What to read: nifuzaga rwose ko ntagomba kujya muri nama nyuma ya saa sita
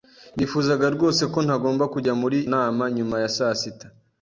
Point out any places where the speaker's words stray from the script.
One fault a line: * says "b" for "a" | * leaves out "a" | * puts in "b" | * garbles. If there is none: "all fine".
all fine